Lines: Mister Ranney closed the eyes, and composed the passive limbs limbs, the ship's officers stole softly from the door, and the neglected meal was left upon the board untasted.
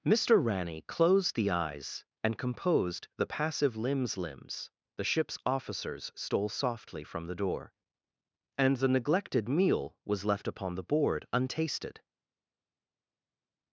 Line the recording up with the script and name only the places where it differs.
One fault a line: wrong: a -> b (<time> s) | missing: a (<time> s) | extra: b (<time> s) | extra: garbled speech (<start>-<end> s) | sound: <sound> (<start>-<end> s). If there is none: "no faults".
no faults